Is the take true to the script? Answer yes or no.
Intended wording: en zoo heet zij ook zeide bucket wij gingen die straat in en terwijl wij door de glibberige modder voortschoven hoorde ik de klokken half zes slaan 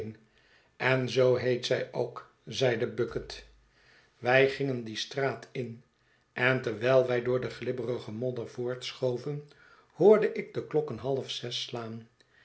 yes